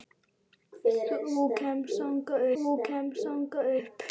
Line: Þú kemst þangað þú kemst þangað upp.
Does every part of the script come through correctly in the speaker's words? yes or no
yes